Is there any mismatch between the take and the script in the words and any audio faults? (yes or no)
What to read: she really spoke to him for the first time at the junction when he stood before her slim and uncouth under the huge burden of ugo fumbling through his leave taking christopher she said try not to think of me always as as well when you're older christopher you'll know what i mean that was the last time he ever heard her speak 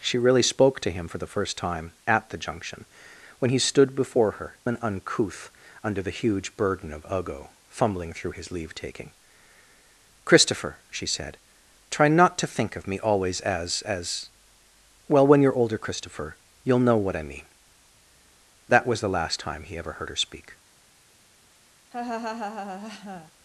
yes